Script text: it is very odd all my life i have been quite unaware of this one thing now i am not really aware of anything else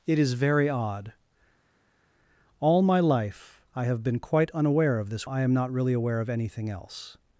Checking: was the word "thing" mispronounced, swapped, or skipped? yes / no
yes